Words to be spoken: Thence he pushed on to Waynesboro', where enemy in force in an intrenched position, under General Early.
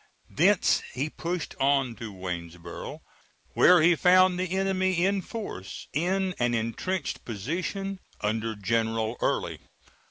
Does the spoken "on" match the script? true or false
true